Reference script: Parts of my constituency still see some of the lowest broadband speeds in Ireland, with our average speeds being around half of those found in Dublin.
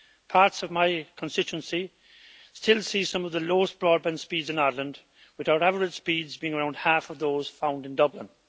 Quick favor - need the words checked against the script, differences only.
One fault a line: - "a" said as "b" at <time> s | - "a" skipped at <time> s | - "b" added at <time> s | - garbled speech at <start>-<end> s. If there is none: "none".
none